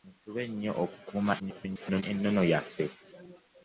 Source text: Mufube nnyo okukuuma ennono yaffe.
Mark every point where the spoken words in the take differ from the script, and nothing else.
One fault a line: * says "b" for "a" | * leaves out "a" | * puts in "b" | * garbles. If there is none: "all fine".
* garbles